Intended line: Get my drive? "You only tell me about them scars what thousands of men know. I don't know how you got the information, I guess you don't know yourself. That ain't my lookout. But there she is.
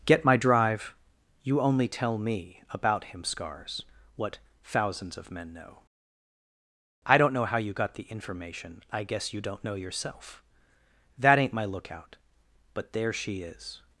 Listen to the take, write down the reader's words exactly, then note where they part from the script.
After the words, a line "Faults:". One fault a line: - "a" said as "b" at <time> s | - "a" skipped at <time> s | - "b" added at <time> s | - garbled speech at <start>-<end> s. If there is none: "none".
Get my drive? "You only tell me about him scars what thousands of men know. I don't know how you got the information, I guess you don't know yourself. That ain't my lookout. But there she is.
Faults:
- "them" said as "him" at 3.0 s